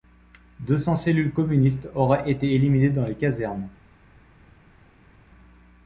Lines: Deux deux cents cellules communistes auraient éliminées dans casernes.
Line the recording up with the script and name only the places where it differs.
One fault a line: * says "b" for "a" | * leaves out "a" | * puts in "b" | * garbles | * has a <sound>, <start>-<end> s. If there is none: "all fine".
* leaves out "deux"
* puts in "été"
* puts in "les"